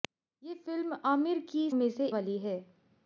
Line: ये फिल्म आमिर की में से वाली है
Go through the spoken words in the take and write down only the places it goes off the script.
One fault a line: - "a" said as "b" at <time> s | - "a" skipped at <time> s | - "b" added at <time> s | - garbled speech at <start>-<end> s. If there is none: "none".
none